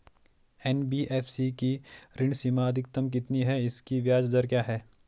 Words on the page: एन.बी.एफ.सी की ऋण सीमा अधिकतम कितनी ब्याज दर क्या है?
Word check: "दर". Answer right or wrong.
right